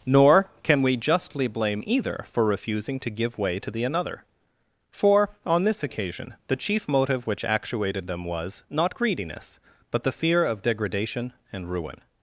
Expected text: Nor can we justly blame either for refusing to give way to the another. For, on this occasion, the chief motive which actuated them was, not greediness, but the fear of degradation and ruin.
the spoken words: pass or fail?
pass